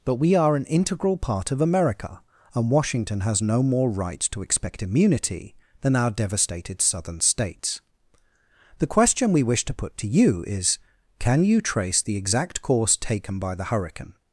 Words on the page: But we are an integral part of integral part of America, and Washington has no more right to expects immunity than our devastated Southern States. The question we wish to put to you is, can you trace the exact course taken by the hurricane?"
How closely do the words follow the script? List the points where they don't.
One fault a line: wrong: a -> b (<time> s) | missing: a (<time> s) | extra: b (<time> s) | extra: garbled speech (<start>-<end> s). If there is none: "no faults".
missing: integral part of (1.6 s)
wrong: expects -> expect (4.4 s)